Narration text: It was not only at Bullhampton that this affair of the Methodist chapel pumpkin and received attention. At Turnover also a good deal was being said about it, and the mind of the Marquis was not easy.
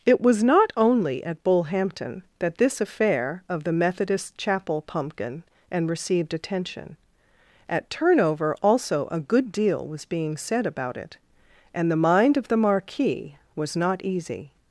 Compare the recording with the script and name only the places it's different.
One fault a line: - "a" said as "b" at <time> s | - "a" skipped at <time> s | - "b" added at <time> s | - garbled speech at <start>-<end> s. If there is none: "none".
none